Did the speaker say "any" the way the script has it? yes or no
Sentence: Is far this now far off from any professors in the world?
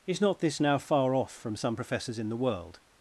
no